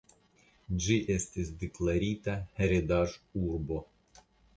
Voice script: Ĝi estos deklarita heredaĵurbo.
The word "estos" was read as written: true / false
false